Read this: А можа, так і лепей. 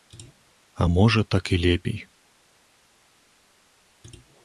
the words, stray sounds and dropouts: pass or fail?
pass